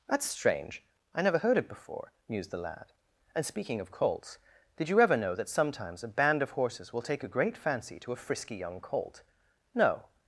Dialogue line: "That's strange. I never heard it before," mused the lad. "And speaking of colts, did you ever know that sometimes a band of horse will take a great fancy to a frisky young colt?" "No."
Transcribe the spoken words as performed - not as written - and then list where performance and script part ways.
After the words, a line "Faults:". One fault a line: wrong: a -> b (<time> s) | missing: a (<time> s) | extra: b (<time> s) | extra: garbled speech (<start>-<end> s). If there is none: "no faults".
"That's strange. I never heard it before," mused the lad. "And speaking of colts, did you ever know that sometimes a band of horses will take a great fancy to a frisky young colt?" "No."
Faults:
wrong: horse -> horses (6.5 s)